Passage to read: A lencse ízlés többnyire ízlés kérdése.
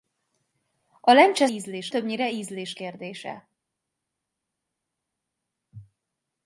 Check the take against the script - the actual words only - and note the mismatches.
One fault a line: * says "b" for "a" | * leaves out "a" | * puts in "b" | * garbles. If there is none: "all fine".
all fine